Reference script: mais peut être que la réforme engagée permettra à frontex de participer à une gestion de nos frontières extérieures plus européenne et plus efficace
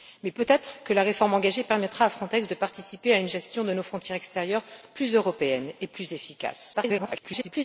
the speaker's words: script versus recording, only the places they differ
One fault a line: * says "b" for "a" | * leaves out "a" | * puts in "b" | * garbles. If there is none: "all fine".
* garbles